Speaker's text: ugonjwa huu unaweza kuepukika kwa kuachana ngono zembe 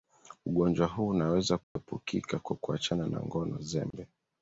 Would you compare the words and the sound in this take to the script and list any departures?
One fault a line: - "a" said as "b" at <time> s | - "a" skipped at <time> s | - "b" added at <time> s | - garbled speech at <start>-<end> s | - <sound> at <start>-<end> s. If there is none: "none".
- dropout at 1.6-1.8 s
- "na" added at 3.1 s
- dropout at 3.9-3.9 s